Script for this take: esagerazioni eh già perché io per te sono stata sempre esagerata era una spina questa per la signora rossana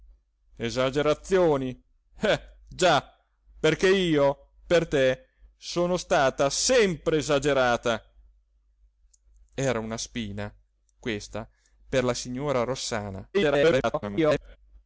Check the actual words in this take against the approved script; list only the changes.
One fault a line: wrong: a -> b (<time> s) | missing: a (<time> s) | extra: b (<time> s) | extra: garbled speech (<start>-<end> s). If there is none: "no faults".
extra: garbled speech (13.3-14.6 s)